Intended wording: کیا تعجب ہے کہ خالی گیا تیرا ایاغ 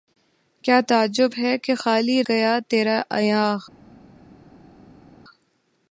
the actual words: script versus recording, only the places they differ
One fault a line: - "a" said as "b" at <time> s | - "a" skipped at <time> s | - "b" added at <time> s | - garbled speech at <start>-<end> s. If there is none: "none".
none